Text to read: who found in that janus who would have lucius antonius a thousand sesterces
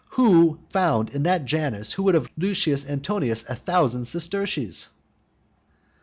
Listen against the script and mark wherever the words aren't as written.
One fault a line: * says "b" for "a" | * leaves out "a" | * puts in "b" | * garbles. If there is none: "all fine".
all fine